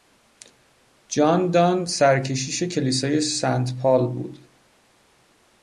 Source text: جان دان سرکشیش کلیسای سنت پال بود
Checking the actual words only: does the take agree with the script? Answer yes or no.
yes